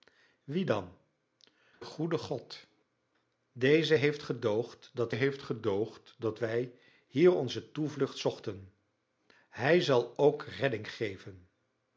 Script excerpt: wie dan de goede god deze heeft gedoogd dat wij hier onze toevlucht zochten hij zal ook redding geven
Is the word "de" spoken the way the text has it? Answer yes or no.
no